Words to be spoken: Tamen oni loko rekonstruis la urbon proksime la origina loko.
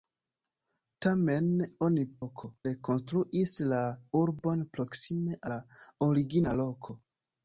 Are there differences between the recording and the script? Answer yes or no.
no